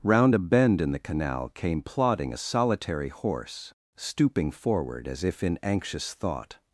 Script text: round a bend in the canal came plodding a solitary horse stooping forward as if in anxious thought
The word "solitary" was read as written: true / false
true